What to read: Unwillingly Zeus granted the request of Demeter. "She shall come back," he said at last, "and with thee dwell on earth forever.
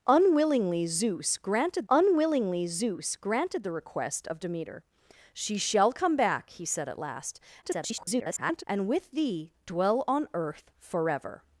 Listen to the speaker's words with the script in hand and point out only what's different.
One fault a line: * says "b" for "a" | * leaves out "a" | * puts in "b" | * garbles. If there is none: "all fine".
* puts in "unwillingly Zeus granted"
* garbles